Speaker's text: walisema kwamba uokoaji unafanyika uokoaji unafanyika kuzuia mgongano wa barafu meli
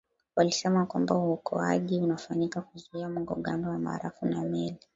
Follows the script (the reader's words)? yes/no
no